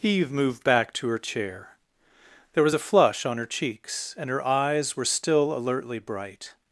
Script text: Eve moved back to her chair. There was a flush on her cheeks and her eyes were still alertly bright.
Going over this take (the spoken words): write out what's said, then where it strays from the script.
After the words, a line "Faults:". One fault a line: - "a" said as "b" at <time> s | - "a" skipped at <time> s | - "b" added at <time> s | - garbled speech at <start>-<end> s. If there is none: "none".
Eve moved back to her chair. There was a flush on her cheeks and her eyes were still alertly bright.
Faults:
none